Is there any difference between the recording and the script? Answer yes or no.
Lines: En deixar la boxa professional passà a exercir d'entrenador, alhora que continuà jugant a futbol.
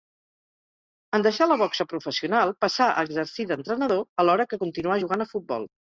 no